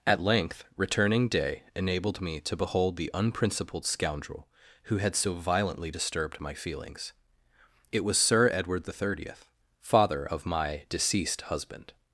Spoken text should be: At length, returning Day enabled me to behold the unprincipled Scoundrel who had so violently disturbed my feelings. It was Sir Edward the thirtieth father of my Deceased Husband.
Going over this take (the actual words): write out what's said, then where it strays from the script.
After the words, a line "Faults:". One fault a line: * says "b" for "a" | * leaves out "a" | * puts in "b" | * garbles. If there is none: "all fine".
At length, returning Day enabled me to behold the unprincipled Scoundrel who had so violently disturbed my feelings. It was Sir Edward the thirtieth father of my Deceased Husband.
Faults:
all fine